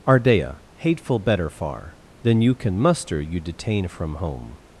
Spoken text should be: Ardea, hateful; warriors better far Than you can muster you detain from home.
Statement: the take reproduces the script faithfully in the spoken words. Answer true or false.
false